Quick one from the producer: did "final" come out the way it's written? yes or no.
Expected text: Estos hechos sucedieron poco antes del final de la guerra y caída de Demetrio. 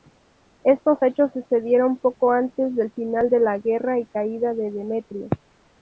yes